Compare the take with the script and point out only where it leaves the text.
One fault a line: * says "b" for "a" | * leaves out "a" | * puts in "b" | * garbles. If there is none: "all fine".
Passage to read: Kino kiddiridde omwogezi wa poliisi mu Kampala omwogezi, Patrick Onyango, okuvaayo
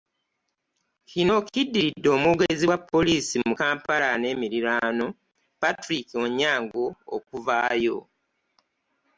* says "n'emiriraano" for "omwogezi"